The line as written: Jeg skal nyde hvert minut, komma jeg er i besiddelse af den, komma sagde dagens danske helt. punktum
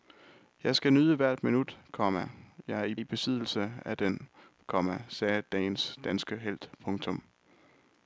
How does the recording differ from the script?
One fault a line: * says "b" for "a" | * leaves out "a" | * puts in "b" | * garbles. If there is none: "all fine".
* puts in "i"